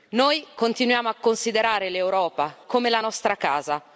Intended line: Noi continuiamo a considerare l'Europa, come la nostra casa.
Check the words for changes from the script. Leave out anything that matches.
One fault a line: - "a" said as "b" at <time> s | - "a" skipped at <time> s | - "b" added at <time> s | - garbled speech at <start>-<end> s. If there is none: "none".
none